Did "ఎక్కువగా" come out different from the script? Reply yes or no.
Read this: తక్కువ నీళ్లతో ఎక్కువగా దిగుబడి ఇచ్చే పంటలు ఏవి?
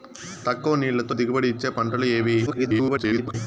yes